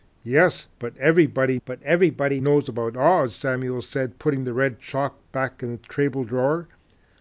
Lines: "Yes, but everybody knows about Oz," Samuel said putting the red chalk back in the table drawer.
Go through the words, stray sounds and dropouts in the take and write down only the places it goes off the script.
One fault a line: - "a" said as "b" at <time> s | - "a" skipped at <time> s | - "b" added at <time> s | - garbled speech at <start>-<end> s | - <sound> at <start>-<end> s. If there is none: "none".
- "but everybody" added at 1.7 s